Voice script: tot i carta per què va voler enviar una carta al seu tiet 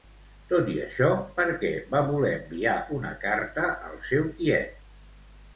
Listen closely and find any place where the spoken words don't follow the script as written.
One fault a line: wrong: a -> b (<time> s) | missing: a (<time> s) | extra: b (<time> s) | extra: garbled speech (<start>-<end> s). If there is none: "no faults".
wrong: carta -> això (0.8 s)